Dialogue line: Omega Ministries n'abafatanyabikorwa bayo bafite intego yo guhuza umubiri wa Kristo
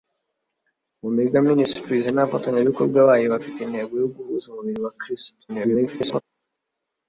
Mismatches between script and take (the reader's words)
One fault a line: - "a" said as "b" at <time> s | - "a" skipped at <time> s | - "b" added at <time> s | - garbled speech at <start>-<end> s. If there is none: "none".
- garbled speech at 5.5-6.2 s